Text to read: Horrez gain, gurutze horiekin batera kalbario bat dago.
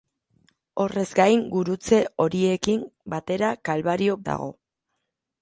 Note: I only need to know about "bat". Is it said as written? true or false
false